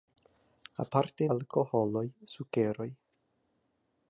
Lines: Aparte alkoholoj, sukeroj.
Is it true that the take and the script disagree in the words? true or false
false